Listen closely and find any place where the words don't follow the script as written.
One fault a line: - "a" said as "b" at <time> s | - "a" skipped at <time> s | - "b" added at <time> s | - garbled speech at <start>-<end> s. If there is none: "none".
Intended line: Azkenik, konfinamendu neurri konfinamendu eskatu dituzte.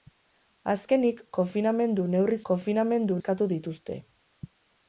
none